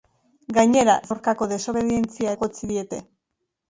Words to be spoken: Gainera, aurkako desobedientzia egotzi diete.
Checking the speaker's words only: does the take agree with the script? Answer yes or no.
yes